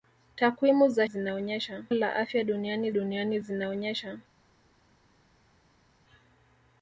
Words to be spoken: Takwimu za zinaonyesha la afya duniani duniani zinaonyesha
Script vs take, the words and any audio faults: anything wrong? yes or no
no